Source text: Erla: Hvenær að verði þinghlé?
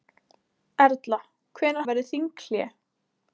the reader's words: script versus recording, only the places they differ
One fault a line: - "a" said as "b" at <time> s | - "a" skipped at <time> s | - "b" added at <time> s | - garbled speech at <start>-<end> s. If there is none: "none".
none